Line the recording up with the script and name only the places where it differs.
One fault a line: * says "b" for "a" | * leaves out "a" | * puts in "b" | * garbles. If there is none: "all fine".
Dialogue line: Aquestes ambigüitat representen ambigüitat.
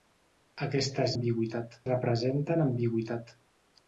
all fine